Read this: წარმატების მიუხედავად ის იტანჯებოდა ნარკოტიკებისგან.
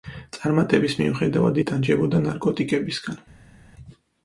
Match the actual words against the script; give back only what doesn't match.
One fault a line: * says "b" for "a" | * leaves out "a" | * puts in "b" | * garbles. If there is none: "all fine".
* leaves out "ის"